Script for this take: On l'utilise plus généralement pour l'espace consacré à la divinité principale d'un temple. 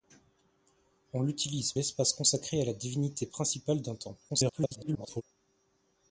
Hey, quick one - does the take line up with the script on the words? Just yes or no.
no